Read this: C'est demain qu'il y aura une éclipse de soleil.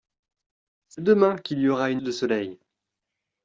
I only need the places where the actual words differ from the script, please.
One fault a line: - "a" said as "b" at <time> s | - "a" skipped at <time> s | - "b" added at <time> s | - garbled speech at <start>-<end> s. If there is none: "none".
- "éclipse" skipped at 2.0 s